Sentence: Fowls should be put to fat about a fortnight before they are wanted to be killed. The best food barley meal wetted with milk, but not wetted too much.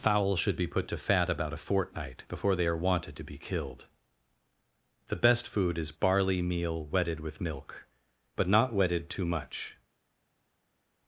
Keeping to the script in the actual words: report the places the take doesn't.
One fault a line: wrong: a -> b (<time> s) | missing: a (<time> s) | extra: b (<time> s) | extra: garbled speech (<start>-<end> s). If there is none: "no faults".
extra: is (5.8 s)